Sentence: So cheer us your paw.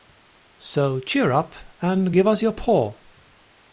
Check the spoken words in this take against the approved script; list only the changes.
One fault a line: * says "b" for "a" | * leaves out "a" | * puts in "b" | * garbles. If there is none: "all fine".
* puts in "up and give"